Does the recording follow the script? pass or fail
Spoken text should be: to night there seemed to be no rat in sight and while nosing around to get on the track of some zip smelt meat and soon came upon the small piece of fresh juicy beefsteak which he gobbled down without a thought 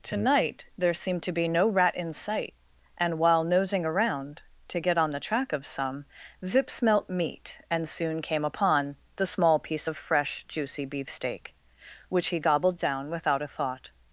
pass